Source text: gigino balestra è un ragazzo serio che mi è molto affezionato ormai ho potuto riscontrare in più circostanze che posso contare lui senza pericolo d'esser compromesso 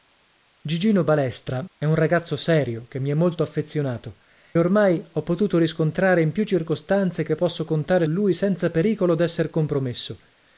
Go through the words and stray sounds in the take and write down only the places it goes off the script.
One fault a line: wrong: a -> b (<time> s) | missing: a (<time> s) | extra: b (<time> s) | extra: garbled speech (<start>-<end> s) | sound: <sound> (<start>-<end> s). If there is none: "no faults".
no faults